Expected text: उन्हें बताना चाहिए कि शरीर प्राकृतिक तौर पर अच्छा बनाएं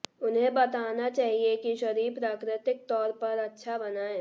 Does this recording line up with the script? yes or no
yes